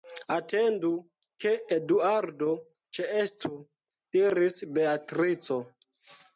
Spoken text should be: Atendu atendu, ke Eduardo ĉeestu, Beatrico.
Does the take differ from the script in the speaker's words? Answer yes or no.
yes